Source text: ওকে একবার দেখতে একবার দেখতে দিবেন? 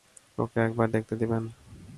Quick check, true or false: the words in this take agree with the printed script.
false